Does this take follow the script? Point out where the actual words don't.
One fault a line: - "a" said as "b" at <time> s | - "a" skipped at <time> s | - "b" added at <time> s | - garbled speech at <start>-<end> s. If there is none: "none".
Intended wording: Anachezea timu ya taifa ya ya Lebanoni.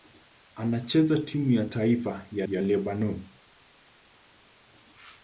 none